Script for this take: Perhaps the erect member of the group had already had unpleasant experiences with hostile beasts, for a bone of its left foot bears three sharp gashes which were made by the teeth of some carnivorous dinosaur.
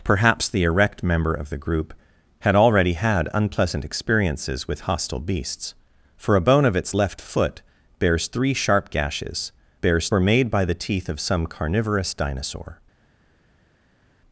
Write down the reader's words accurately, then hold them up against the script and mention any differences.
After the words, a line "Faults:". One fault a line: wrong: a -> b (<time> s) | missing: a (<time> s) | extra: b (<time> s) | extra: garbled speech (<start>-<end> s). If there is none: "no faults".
Perhaps the erect member of the group had already had unpleasant experiences with hostile beasts, for a bone of its left foot bears three sharp gashes bears were made by the teeth of some carnivorous dinosaur.
Faults:
wrong: which -> bears (9.8 s)